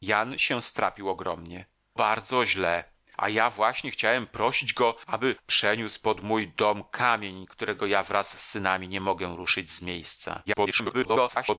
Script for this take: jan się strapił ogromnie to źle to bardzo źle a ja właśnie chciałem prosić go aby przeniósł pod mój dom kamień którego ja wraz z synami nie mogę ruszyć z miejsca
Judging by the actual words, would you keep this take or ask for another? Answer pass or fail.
fail